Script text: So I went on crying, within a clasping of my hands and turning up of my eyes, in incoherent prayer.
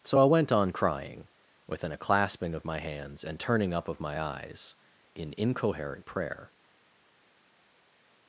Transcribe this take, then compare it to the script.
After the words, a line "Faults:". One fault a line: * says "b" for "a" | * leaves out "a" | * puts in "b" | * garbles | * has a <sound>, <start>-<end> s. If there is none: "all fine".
So I went on crying, within a clasping of my hands and turning up of my eyes, in incoherent prayer.
Faults:
all fine